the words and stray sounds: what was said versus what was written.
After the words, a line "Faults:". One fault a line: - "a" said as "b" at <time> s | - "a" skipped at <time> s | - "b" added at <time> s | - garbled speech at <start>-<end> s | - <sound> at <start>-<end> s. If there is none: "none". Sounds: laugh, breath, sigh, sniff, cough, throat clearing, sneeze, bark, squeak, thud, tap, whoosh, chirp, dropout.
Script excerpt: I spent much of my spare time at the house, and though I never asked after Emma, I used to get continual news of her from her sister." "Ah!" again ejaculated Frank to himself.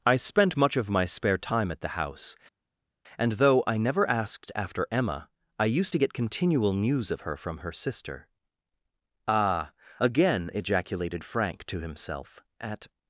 I spent much of my spare time at the house, and though I never asked after Emma, I used to get continual news of her from her sister." "Ah!" again ejaculated Frank to himself. "At
Faults:
- "At" added at 12.6 s